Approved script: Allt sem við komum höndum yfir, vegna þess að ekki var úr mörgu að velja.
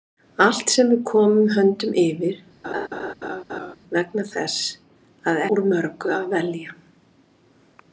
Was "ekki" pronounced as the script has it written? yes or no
no